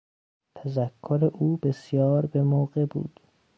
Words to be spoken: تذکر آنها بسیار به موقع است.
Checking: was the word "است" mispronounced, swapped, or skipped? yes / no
yes